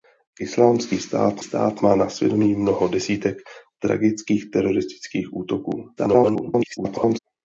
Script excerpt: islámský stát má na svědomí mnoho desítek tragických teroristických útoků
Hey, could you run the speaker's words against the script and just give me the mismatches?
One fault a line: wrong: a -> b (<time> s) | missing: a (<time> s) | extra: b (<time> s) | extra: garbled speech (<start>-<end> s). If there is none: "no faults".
extra: stát (1.4 s)
extra: garbled speech (6.0-7.2 s)